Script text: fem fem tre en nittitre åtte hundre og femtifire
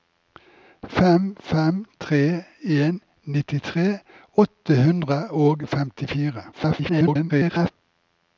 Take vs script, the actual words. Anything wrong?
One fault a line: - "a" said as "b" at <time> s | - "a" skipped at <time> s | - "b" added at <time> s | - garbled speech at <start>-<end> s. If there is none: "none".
- garbled speech at 6.5-7.7 s